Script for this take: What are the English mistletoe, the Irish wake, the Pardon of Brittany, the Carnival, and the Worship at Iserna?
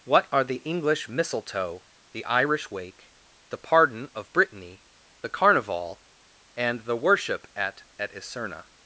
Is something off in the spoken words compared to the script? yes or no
yes